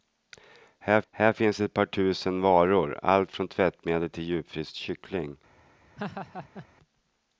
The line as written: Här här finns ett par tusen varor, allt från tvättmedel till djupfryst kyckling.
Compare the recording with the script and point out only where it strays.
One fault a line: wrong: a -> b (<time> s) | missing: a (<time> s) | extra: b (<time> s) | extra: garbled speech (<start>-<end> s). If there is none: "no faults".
no faults